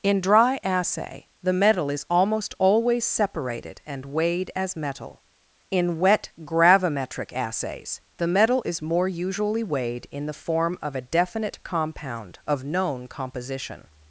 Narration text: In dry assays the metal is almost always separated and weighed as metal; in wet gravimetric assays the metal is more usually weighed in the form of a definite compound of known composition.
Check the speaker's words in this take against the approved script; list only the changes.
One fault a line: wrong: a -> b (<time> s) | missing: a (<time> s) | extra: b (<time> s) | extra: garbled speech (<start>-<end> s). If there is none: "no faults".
wrong: assays -> assay (0.6 s)